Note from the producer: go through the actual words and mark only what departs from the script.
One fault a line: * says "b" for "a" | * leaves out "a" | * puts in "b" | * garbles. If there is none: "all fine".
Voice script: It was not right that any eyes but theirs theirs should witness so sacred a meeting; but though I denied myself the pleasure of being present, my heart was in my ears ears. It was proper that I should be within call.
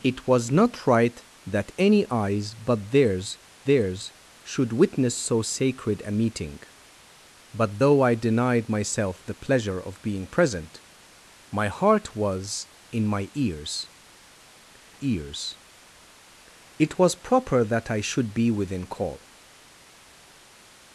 all fine